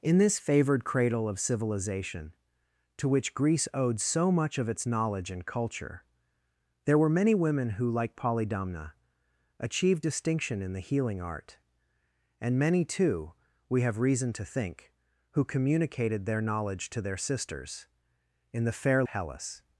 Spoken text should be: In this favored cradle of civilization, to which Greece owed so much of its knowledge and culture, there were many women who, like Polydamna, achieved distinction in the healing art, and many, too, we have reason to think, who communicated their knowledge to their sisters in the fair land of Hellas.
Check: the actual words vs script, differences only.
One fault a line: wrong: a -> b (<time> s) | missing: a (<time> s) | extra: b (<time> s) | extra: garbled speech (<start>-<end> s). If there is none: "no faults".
missing: land of (19.0 s)